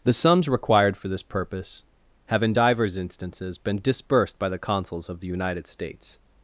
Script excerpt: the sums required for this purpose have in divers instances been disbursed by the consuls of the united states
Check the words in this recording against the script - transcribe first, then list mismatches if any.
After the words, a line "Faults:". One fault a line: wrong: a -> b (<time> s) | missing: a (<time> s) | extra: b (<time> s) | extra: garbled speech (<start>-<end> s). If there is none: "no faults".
the sums required for this purpose have in divers instances been disbursed by the consuls of the united states
Faults:
no faults